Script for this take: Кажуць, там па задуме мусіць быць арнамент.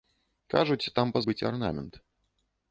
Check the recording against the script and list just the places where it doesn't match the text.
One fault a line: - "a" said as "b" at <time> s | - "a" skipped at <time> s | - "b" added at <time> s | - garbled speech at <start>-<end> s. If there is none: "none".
- "задуме мусіць" skipped at 1.2 s